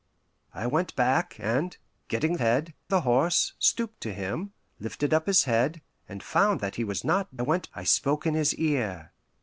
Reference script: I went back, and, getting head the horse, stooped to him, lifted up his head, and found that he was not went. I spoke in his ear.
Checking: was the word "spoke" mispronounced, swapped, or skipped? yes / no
no